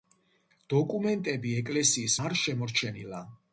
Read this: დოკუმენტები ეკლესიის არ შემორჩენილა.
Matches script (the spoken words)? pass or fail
pass